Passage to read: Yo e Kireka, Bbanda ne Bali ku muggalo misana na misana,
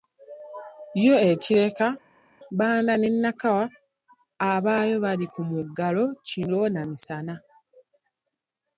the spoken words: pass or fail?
fail